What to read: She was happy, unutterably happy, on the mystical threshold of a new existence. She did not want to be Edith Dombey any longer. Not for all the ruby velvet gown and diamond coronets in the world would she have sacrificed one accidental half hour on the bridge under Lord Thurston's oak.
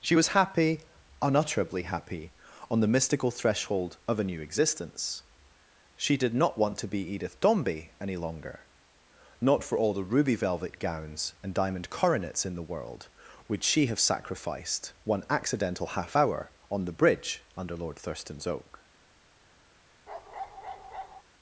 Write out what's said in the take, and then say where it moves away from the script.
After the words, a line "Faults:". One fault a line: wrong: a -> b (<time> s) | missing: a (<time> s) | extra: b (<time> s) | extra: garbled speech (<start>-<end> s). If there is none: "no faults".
She was happy, unutterably happy, on the mystical threshold of a new existence. She did not want to be Edith Dombey any longer. Not for all the ruby velvet gowns and diamond coronets in the world would she have sacrificed one accidental half hour on the bridge under Lord Thurston's oak.
Faults:
wrong: gown -> gowns (10.8 s)